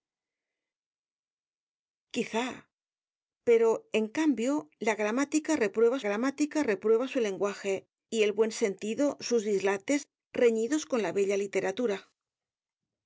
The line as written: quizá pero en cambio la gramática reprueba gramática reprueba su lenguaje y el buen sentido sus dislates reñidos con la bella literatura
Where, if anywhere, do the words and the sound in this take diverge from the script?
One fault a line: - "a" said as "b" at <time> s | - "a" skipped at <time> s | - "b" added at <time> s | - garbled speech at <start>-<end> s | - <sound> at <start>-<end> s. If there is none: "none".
none